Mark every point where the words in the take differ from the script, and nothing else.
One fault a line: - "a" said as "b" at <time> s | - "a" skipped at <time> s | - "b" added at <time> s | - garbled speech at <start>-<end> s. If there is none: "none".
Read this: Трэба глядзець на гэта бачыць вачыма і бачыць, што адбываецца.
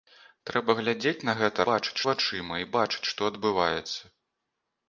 none